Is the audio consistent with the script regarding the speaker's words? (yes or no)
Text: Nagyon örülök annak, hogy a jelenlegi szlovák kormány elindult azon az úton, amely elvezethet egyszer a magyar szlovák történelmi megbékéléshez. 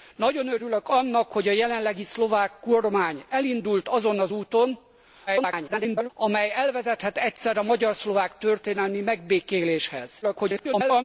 no